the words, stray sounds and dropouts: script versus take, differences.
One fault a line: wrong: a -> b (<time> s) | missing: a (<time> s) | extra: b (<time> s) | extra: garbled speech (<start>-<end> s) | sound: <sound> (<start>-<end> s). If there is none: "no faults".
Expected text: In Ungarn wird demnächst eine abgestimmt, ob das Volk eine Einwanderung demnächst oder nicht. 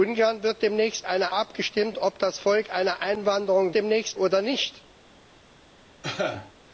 sound: cough (6.0-6.5 s)